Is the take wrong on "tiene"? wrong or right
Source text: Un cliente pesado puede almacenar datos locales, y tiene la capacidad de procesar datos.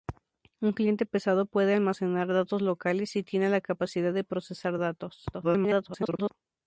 right